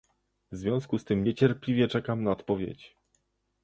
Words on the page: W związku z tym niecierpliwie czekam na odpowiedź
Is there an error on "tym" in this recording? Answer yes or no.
no